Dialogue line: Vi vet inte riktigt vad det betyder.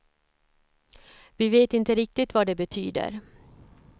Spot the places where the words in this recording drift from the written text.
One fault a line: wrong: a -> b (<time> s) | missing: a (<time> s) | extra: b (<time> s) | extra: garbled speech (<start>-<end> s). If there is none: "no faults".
no faults